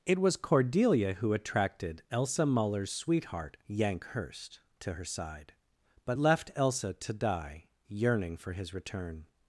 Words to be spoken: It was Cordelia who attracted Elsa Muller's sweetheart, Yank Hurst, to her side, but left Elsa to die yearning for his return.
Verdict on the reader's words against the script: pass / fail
pass